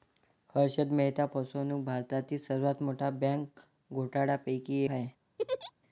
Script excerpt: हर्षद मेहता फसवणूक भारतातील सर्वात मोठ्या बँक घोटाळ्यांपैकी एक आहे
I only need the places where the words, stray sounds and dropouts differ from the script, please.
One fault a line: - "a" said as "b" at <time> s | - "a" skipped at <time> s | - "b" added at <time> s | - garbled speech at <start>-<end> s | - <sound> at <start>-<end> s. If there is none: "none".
- "एक" skipped at 4.8 s
- laugh at 5.4-5.7 s